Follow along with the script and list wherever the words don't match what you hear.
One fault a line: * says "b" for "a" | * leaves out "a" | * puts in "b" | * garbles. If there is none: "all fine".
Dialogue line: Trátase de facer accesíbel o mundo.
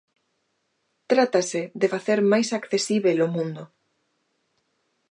* puts in "máis"